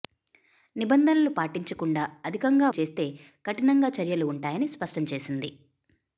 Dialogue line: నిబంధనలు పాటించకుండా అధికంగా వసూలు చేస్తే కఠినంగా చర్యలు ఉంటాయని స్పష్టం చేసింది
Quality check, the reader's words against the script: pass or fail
fail